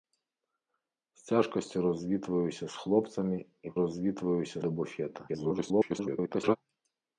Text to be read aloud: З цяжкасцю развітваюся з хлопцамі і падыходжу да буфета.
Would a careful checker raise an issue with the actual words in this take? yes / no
yes